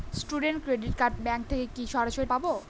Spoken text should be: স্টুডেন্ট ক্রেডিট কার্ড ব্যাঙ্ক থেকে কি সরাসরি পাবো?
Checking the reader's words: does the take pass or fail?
pass